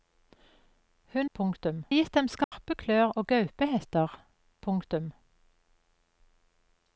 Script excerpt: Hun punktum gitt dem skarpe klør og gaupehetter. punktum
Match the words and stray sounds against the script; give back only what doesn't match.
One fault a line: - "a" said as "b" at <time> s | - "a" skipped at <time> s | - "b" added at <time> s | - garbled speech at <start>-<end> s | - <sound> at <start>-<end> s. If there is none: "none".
- dropout at 2.4-2.5 s